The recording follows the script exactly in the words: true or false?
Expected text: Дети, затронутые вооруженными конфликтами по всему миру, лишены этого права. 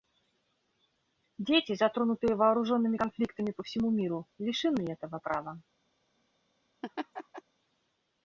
true